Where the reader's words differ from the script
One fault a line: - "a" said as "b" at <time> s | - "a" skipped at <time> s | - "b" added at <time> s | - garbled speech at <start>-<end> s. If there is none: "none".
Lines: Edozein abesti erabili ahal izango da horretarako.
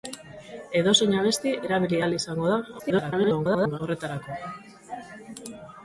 - garbled speech at 2.8-3.8 s